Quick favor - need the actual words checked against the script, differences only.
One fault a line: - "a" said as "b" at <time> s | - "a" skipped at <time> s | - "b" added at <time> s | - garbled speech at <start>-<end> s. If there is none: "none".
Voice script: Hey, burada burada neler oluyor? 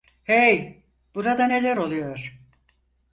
- "burada" skipped at 1.5 s